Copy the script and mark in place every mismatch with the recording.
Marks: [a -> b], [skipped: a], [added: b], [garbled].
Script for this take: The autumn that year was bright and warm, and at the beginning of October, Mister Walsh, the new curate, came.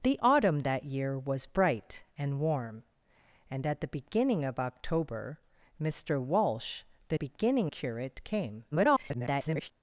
The autumn that year was bright and warm, and at the beginning of October, Mister Walsh, the [new -> beginning] curate, came. [garbled]